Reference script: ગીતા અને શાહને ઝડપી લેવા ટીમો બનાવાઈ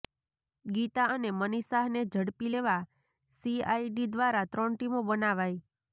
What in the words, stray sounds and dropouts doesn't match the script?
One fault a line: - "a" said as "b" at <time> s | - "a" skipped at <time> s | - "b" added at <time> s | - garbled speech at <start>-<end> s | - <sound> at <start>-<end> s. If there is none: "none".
- "મનીષ" added at 1.4 s
- "સીઆઈડી દ્વારા ત્રણ" added at 3.4 s